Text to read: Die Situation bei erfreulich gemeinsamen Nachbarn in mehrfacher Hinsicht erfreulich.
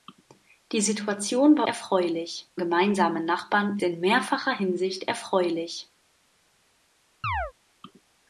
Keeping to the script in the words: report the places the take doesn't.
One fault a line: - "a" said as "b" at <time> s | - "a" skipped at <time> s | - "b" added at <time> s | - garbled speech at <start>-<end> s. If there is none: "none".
none